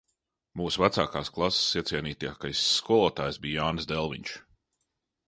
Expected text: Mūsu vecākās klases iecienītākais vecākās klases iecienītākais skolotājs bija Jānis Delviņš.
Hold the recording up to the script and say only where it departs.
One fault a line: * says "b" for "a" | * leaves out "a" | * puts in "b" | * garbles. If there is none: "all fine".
* leaves out "vecākās klases iecienītākais"